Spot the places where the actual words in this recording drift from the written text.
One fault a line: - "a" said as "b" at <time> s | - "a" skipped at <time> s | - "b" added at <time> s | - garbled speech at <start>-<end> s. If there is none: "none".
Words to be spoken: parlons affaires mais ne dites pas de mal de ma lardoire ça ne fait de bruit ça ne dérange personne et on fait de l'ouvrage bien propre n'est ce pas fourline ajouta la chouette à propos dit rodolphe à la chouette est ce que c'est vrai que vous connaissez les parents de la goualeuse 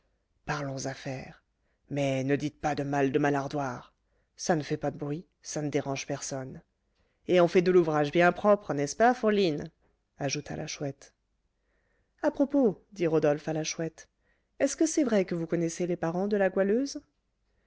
- "pas" added at 4.8 s